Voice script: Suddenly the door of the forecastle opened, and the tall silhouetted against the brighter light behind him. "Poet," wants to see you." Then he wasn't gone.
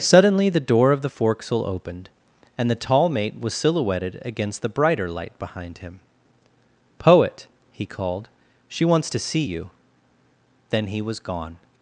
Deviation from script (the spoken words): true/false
true